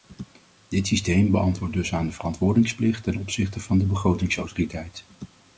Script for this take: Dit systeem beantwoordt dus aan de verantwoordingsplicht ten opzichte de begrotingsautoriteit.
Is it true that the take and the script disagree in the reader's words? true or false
true